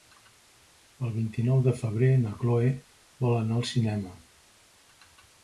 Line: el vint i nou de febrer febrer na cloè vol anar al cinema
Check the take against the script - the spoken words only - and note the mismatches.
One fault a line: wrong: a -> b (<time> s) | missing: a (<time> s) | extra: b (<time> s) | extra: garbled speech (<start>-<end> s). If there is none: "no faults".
missing: febrer (2.1 s)